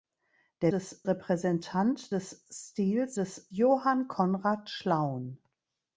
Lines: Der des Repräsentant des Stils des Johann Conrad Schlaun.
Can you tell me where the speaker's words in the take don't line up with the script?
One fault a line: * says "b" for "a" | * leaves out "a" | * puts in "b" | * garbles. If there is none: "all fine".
all fine